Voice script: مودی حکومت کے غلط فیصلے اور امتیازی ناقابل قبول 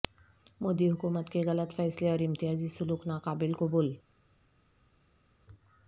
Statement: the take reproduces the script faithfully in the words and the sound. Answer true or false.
false